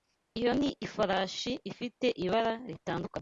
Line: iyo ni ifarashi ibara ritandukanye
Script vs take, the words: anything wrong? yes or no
yes